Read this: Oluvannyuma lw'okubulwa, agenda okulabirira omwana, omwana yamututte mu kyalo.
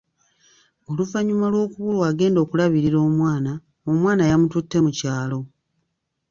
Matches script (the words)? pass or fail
pass